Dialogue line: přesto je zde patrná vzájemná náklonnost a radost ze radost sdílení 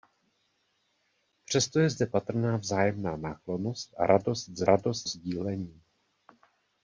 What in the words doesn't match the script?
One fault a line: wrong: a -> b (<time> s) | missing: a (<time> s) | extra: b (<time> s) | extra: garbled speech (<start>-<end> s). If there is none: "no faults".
no faults